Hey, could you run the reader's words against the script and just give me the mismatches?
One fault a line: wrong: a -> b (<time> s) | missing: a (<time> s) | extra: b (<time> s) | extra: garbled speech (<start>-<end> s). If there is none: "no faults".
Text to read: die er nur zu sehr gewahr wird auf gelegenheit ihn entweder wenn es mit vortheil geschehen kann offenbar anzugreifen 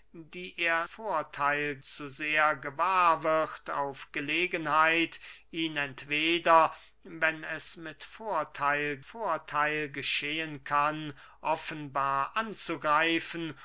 wrong: nur -> vortheil (0.8 s)
extra: vortheil (9.0 s)